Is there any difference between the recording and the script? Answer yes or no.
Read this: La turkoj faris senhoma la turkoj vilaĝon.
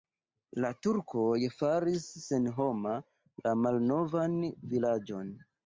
yes